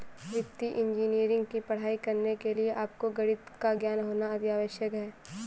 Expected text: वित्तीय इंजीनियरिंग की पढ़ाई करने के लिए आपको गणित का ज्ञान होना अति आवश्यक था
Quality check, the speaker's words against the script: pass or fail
fail